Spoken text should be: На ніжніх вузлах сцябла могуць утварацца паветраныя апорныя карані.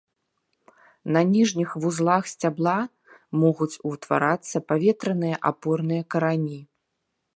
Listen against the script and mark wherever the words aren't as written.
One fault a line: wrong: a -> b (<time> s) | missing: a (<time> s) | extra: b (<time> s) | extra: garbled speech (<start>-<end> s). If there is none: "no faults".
no faults